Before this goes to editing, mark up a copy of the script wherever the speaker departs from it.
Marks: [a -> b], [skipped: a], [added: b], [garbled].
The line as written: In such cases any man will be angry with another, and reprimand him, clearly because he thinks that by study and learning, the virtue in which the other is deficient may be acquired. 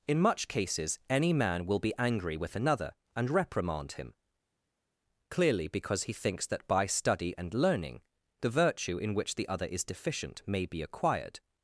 In [such -> much] cases any man will be angry with another, and reprimand him, clearly because he thinks that by study and learning, the virtue in which the other is deficient may be acquired.